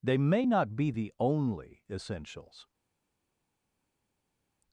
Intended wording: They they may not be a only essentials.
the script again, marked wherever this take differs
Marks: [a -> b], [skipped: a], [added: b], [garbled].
They [skipped: they] may not be [a -> the] only essentials.